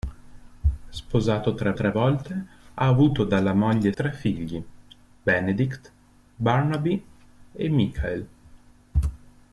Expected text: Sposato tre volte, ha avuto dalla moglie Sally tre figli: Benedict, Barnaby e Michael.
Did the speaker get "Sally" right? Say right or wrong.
wrong